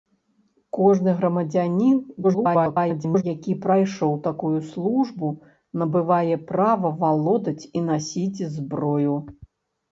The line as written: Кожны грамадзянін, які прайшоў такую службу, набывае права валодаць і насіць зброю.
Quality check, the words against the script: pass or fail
fail